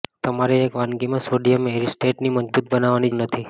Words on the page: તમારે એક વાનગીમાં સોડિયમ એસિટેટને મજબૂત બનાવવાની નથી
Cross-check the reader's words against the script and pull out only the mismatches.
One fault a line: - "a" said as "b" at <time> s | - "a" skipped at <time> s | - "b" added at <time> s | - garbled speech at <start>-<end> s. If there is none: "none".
none